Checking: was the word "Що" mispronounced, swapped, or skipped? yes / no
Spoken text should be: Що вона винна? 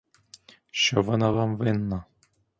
no